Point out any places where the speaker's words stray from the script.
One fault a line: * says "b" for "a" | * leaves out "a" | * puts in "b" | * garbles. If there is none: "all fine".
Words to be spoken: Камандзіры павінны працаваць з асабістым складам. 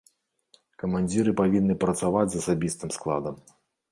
all fine